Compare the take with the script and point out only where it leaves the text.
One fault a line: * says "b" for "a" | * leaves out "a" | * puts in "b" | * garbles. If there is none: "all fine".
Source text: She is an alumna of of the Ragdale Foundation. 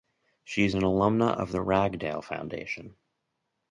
* leaves out "of"